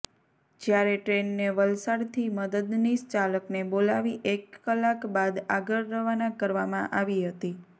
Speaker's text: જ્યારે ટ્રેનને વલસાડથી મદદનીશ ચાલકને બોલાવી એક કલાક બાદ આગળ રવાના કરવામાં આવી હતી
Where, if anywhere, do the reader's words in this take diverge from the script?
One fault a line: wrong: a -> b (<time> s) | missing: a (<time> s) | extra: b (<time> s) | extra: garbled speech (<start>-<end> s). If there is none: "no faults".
no faults